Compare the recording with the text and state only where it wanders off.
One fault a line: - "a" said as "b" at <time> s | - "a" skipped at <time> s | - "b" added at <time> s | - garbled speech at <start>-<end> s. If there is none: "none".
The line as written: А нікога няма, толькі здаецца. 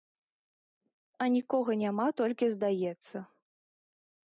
none